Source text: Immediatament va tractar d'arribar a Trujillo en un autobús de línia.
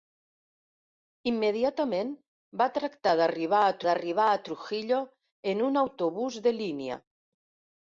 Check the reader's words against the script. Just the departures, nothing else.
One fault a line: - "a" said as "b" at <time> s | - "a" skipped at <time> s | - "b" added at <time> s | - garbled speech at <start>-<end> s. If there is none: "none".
- "d'arribar a" added at 3.9 s